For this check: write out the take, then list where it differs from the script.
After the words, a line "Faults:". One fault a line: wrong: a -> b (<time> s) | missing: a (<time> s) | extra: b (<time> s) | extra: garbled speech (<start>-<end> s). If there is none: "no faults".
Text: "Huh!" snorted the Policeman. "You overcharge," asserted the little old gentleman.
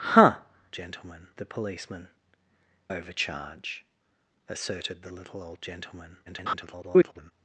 "Huh!" gentleman the Policeman. "Overcharge," asserted the little old gentleman. [garbled]
Faults:
wrong: snorted -> gentleman (0.7 s)
missing: You (2.1 s)
extra: garbled speech (6.3-7.3 s)